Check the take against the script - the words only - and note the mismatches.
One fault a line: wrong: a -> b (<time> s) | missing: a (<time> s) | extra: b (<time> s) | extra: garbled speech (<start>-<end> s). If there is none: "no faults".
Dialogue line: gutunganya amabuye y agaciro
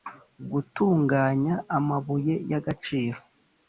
no faults